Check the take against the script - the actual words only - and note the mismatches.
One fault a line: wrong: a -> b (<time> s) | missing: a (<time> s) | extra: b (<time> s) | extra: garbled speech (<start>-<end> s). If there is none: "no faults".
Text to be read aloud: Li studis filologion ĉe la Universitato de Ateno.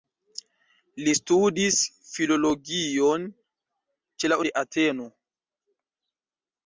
missing: Universitato (4.4 s)